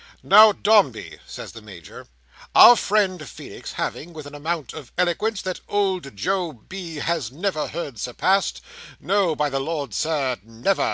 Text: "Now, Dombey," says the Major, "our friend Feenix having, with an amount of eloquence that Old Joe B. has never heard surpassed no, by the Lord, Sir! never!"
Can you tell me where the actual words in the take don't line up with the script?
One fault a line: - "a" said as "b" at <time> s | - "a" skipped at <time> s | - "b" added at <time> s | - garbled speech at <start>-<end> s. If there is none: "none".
none